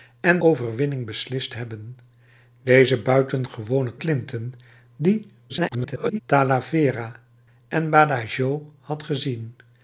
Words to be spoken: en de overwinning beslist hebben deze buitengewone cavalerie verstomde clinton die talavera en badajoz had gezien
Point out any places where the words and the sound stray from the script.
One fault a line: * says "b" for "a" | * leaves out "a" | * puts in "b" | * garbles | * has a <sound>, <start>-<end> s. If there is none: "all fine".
* leaves out "de"
* leaves out "cavalerie verstomde"
* garbles